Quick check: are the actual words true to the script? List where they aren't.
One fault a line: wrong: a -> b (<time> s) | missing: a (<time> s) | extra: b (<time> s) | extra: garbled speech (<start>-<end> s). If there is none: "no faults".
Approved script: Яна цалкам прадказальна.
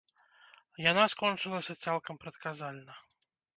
extra: скончылася (1.2 s)